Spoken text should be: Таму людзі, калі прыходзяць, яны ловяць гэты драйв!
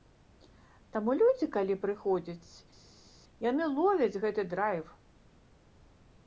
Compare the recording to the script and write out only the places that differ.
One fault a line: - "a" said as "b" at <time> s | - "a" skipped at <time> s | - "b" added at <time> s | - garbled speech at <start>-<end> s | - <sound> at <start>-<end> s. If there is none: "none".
none